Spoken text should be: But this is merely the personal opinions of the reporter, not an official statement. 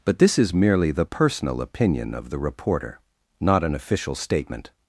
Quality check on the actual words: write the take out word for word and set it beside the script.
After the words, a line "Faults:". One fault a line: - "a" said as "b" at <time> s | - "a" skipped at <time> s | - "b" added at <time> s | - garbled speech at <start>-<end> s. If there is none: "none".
But this is merely the personal opinion of the reporter, not an official statement.
Faults:
- "opinions" said as "opinion" at 1.6 s